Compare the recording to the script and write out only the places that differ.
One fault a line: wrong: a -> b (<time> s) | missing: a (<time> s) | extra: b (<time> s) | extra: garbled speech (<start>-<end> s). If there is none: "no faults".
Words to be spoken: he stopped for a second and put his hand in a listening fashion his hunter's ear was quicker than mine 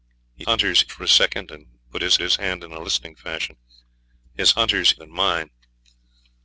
wrong: stopped -> hunter's (0.4 s)
extra: his (2.2 s)
missing: ear was quicker (4.9 s)